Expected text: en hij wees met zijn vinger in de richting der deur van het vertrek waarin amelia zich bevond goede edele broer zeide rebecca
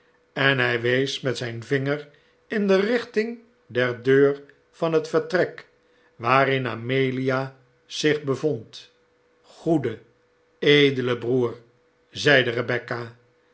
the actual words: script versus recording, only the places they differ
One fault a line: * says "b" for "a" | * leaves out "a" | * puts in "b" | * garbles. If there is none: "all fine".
all fine